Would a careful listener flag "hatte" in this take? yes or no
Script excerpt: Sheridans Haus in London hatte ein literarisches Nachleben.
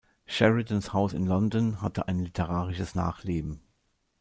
no